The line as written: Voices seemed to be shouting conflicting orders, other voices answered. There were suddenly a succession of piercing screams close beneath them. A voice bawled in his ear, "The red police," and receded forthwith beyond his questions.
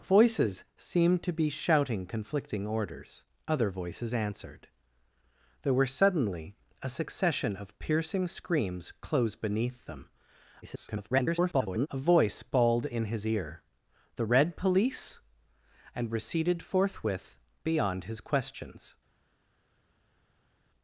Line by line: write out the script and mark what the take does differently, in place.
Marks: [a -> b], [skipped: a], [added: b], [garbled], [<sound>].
Voices seemed to be shouting conflicting orders, other voices answered. There were suddenly a succession of piercing screams close beneath them. [garbled] A voice bawled in his ear, "The red police," and receded forthwith beyond his questions.